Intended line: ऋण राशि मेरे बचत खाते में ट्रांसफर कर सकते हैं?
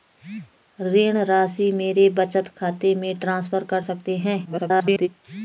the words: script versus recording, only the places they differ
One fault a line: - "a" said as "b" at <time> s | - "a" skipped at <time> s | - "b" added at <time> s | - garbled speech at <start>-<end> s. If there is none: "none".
- garbled speech at 4.4-5.1 s